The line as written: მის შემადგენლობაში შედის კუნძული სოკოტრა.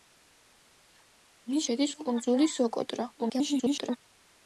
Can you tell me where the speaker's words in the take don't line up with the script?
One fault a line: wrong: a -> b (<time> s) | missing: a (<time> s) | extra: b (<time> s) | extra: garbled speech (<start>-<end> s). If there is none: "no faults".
missing: შემადგენლობაში (1.7 s)
extra: garbled speech (3.2-4.0 s)